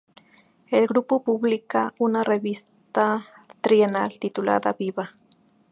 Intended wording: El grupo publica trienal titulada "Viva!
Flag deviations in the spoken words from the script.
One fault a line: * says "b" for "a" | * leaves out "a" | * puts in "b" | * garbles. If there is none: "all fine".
* puts in "una revista"